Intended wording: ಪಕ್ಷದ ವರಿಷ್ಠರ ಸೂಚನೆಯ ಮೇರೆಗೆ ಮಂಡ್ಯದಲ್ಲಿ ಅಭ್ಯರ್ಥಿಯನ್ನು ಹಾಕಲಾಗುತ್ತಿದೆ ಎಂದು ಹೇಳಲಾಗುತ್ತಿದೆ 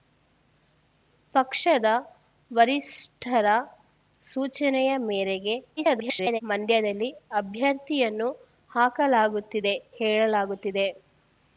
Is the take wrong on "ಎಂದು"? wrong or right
wrong